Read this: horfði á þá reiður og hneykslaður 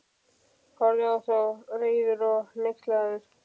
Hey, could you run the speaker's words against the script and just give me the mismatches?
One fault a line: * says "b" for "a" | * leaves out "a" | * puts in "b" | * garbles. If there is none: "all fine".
all fine